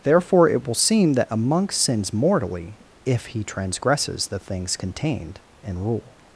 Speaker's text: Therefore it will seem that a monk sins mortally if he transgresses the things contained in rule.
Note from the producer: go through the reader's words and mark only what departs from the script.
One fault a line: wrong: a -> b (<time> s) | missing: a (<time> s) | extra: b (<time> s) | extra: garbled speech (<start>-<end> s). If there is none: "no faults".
no faults